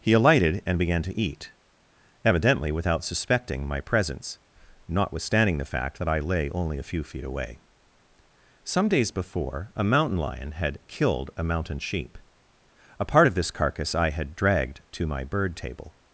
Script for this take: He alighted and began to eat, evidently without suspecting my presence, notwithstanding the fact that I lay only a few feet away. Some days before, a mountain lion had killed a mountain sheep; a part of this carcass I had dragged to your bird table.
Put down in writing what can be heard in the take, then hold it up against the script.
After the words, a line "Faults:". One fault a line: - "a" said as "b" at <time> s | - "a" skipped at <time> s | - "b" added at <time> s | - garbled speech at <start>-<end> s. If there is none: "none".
He alighted and began to eat, evidently without suspecting my presence, notwithstanding the fact that I lay only a few feet away. Some days before, a mountain lion had killed a mountain sheep; a part of this carcass I had dragged to my bird table.
Faults:
- "your" said as "my" at 15.1 s